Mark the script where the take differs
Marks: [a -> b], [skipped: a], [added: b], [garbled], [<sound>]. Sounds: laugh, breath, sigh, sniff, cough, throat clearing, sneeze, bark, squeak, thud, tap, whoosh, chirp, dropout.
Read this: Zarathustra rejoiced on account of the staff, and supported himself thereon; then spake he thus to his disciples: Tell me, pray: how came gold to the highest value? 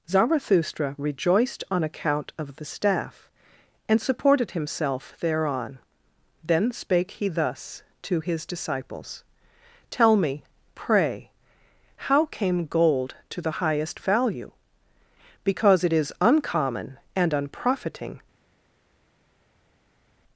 Zarathustra rejoiced on account of the staff, and supported himself thereon; then spake he thus to his disciples: Tell me, pray: how came gold to the highest value? [added: Because it is uncommon and unprofiting]